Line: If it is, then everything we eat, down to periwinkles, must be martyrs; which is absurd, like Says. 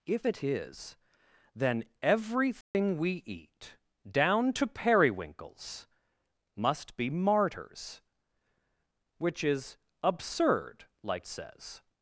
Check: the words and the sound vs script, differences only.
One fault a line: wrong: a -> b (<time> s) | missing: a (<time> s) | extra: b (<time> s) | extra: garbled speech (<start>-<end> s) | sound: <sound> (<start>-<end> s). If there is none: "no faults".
sound: dropout (2.6-2.7 s)